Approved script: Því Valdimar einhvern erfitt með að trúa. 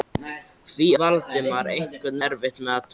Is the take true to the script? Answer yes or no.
yes